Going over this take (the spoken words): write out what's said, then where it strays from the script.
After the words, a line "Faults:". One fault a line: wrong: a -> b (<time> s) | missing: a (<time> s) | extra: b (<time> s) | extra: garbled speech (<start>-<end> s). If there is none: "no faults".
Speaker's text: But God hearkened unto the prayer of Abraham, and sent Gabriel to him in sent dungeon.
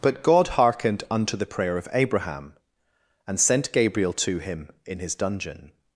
But God hearkened unto the prayer of Abraham, and sent Gabriel to him in his dungeon.
Faults:
wrong: sent -> his (5.0 s)